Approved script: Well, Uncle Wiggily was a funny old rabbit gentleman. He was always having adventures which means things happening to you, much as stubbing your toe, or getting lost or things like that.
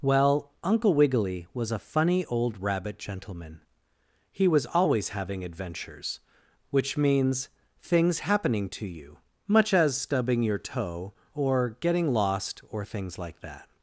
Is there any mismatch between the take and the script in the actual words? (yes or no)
no